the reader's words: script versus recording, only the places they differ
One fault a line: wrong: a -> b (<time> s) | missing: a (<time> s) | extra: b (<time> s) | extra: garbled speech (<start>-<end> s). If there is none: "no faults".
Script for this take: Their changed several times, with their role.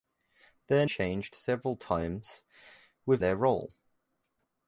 no faults